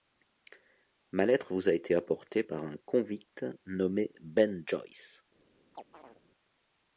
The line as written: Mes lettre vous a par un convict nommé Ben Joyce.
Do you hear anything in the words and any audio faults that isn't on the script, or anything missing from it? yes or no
yes